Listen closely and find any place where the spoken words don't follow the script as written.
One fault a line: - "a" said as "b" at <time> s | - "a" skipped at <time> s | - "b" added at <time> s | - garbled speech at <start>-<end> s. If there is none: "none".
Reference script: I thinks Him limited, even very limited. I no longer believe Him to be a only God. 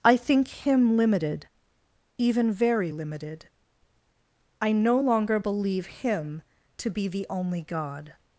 - "thinks" said as "think" at 0.2 s
- "a" said as "the" at 7.1 s